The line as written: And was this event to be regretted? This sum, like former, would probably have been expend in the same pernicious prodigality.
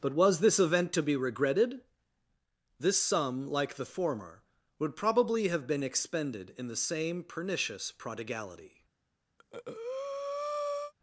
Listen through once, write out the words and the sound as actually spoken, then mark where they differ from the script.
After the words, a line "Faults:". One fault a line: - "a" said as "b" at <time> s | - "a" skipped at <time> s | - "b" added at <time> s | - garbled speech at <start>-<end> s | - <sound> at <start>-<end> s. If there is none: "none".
But was this event to be regretted? This sum, like the former, would probably have been expended in the same pernicious prodigality.
Faults:
- "And" said as "But" at 0.0 s
- "the" added at 3.8 s
- "expend" said as "expended" at 5.8 s
- breath at 9.4-10.9 s